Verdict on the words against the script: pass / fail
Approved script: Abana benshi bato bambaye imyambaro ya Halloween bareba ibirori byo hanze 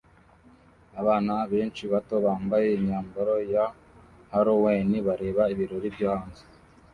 pass